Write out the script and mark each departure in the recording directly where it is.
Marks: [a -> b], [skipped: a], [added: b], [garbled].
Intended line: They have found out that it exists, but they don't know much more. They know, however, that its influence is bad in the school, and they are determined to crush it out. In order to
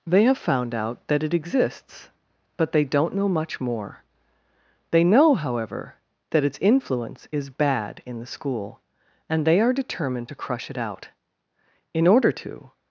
They have found out that it exists, but they don't know much more. They know, however, that its influence is bad in the school, and they are determined to crush it out. In order to